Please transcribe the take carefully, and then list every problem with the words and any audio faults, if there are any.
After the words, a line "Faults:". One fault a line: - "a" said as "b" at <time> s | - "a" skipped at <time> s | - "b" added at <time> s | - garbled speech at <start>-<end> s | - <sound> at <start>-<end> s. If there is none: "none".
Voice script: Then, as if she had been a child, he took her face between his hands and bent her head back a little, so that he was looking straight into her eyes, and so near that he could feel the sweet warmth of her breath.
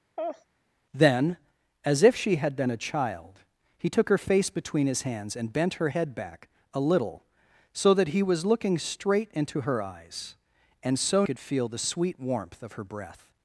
Then, as if she had been a child, he took her face between his hands and bent her head back a little, so that he was looking straight into her eyes, and so could feel the sweet warmth of her breath.
Faults:
- laugh at 0.2-0.5 s
- "near that he" skipped at 11.3 s